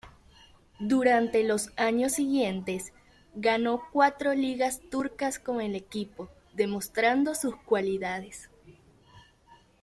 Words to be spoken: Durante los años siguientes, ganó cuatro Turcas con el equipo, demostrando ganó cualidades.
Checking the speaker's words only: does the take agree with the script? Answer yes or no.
no